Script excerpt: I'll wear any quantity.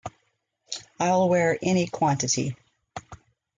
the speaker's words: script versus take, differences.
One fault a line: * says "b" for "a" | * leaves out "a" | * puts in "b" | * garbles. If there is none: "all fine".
all fine